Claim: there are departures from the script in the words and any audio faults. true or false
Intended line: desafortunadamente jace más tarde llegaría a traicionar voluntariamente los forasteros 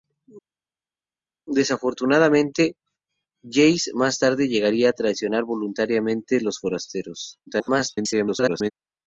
true